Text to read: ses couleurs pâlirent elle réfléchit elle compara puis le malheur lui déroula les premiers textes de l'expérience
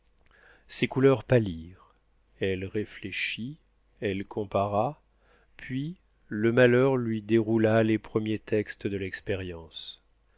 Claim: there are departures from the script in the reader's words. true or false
false